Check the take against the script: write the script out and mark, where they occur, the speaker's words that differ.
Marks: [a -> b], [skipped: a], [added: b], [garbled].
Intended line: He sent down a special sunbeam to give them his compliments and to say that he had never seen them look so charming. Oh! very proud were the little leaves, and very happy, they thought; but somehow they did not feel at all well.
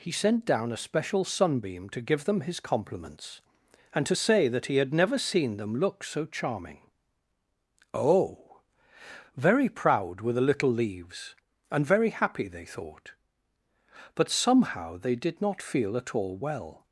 He sent down a special sunbeam to give them his compliments and to say that he had never seen them look so charming. Oh! very proud were the little leaves, and very happy, they thought; but somehow they did not feel at all well.